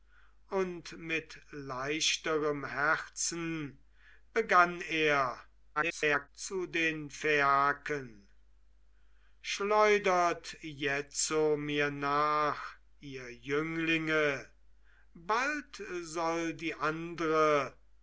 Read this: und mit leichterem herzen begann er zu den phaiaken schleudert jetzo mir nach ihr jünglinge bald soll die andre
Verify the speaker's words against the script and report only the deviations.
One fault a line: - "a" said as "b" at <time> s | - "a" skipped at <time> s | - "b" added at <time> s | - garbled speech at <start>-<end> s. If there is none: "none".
- garbled speech at 5.8-6.3 s